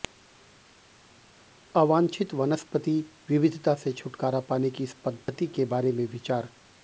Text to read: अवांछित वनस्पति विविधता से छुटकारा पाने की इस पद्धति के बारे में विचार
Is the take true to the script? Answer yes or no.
yes